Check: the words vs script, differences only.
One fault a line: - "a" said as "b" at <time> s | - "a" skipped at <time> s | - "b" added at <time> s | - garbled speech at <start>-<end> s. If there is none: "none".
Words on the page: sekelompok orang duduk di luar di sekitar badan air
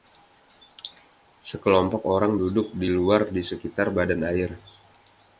none